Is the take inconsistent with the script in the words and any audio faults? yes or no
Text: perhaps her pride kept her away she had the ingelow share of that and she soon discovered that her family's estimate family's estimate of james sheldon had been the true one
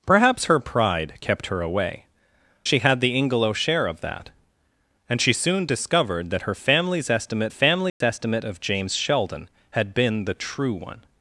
yes